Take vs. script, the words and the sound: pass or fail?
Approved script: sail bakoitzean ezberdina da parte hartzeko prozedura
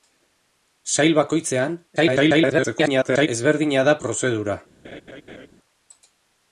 fail